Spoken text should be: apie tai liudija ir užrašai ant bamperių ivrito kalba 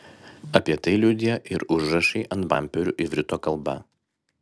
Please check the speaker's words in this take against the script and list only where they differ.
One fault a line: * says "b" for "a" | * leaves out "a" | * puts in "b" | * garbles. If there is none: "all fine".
all fine